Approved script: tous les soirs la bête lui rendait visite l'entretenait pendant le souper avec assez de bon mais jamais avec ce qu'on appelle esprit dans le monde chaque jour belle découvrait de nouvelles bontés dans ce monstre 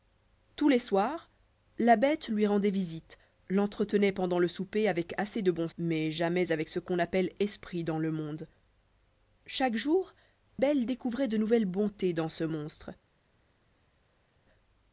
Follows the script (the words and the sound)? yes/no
yes